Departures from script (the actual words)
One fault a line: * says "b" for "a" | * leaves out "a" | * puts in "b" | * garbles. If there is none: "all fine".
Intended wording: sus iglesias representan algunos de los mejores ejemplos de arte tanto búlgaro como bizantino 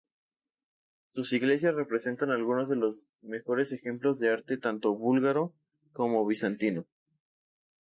all fine